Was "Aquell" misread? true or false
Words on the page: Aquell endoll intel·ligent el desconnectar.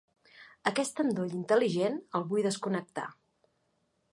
true